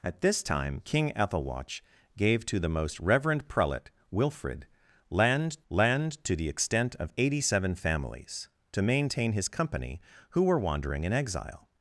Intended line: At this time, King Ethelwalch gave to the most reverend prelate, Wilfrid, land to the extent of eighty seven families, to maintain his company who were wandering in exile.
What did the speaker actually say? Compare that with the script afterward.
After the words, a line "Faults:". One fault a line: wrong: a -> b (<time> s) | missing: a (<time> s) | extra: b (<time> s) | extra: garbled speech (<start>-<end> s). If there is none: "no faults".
At this time, King Ethelwalch gave to the most reverend prelate, Wilfrid, land land to the extent of eighty seven families, to maintain his company who were wandering in exile.
Faults:
extra: land (5.7 s)